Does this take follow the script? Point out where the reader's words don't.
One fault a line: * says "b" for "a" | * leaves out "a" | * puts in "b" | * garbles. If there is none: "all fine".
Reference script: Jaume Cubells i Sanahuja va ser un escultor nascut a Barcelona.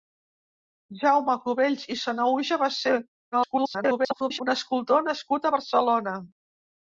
* garbles